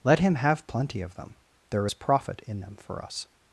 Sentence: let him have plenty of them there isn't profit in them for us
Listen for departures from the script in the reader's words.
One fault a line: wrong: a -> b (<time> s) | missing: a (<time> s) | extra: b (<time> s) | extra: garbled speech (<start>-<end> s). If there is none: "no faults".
wrong: isn't -> is (1.8 s)